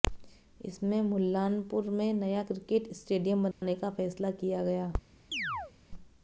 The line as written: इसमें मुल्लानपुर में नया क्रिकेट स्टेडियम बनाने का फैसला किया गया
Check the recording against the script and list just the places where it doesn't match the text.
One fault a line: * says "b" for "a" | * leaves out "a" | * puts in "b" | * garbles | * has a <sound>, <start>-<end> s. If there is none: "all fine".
* has a dropout, 3.5-3.6 s
* has a chirp, 5.3-5.7 s